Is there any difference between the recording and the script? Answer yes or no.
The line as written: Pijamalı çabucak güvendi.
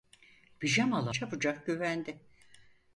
no